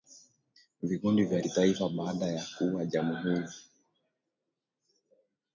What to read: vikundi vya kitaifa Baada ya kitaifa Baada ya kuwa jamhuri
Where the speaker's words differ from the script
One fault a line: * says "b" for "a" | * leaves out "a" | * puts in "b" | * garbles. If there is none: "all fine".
* leaves out "kitaifa Baada ya"